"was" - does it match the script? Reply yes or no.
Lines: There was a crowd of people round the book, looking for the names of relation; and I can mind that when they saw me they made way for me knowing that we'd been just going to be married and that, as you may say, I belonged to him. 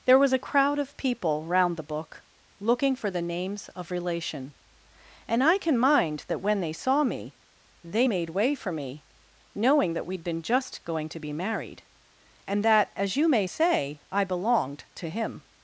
yes